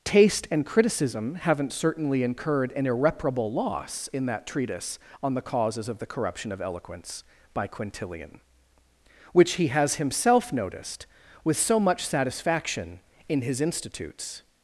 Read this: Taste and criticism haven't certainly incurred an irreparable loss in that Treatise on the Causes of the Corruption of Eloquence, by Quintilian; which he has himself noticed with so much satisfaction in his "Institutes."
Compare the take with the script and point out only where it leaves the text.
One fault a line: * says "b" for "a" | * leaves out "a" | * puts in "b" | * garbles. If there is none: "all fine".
all fine